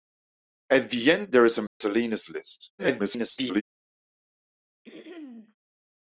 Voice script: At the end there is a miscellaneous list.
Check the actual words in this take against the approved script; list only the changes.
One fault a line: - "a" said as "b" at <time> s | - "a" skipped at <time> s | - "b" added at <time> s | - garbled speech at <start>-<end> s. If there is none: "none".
- garbled speech at 2.8-3.6 s